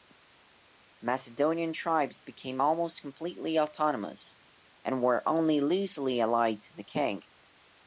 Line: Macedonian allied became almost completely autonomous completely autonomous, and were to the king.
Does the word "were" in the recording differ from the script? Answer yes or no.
yes